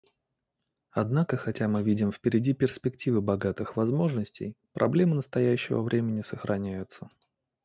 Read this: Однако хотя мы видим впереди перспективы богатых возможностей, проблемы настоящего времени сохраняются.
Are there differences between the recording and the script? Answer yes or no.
no